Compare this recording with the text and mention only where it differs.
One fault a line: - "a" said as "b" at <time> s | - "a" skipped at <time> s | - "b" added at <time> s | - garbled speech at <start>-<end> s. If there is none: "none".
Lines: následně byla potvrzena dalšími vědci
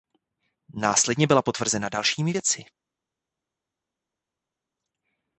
none